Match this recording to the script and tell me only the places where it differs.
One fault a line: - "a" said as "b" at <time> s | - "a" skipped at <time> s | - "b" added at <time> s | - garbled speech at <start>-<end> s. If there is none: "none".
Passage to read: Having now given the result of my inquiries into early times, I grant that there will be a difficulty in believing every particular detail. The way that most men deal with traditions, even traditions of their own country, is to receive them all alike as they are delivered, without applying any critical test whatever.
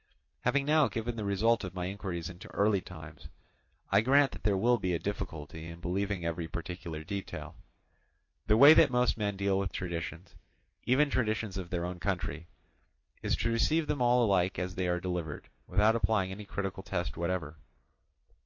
none